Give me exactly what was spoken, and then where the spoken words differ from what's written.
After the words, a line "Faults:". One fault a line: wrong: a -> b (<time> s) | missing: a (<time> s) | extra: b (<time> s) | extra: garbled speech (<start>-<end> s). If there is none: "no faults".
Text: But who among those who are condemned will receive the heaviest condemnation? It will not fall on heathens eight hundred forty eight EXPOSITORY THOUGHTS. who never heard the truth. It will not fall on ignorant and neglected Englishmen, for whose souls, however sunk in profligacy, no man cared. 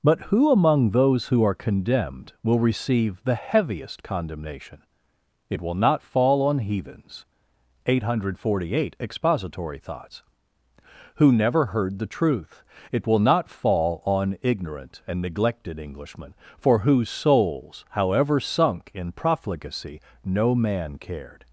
But who among those who are condemned will receive the heaviest condemnation? It will not fall on heathens eight hundred forty eight EXPOSITORY THOUGHTS. who never heard the truth. It will not fall on ignorant and neglected Englishmen, for whose souls, however sunk in profligacy, no man cared.
Faults:
no faults